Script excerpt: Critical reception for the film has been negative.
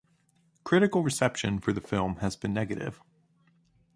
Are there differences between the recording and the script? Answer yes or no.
no